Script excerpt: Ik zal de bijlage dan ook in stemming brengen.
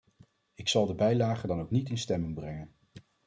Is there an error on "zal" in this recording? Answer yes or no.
no